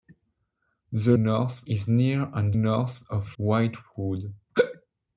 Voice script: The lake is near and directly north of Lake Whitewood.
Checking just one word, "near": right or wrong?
right